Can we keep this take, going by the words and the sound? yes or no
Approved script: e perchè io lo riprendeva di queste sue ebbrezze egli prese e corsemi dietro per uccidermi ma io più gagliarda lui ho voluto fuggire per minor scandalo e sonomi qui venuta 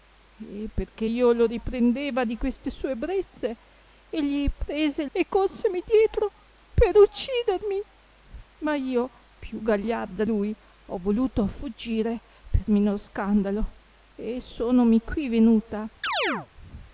no